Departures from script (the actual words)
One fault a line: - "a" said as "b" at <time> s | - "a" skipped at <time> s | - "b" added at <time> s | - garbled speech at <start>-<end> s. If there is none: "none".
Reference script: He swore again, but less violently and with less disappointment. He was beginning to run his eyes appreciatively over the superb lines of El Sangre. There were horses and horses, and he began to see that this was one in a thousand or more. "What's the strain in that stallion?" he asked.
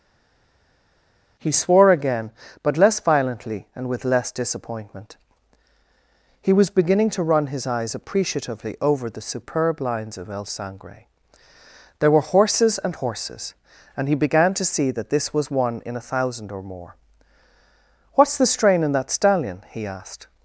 none